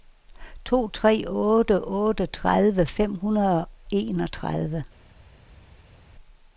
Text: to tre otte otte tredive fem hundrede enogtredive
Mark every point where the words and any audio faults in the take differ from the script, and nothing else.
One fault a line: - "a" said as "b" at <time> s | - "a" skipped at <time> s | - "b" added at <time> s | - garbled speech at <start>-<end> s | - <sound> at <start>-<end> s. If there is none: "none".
none